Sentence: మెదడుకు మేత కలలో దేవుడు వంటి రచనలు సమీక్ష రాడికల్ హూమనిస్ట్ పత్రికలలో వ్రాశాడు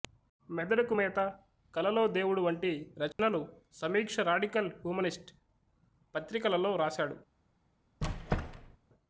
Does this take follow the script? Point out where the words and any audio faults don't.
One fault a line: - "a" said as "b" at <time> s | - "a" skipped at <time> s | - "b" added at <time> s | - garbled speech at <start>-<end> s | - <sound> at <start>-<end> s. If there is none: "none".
- dropout at 3.1-3.2 s
- squeak at 8.0-8.8 s